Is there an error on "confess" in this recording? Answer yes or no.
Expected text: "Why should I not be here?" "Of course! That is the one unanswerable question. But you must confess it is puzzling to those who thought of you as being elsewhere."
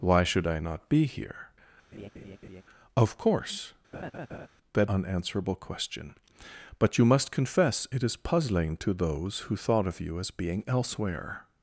no